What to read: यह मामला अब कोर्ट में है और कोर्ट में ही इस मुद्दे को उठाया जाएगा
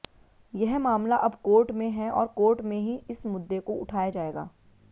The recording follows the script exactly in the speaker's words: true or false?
true